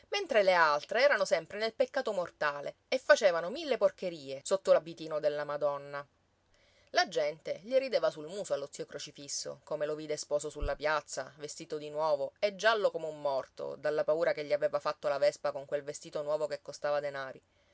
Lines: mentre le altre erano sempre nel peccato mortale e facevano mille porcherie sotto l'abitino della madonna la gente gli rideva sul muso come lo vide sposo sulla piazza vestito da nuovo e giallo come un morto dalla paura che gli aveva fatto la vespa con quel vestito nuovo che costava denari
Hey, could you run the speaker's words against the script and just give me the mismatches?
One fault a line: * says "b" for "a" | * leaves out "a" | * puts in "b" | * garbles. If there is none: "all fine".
* puts in "allo zio crocifisso"
* says "di" for "da"